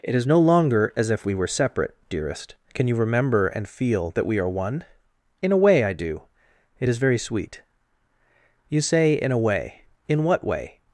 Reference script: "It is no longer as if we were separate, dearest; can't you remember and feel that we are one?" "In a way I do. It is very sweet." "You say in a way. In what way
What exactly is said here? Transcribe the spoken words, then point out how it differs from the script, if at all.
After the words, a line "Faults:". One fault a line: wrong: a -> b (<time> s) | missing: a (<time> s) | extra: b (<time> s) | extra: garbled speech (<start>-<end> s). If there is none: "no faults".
"It is no longer as if we were separate, dearest; can you remember and feel that we are one?" "In a way I do. It is very sweet." "You say in a way. In what way
Faults:
wrong: can't -> can (2.7 s)